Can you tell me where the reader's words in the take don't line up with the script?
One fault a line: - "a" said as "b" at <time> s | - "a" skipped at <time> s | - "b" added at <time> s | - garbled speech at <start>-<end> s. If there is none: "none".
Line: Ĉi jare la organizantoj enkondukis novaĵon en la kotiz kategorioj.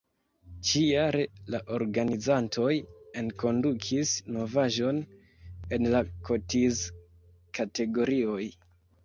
none